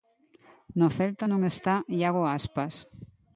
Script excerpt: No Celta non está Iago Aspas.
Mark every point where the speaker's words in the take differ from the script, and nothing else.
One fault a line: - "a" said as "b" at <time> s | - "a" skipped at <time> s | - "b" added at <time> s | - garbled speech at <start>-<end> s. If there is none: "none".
none